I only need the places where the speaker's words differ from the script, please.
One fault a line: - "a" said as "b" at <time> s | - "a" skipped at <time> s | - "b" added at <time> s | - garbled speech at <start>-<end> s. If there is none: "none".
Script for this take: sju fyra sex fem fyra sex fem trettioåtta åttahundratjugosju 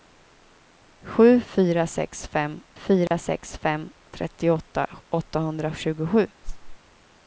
none